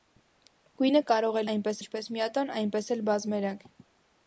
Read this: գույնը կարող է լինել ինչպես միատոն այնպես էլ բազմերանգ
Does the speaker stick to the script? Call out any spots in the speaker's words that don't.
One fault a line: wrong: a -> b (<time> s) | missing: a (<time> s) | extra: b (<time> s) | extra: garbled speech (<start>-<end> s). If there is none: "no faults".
wrong: լինել -> այնպես (1.5 s)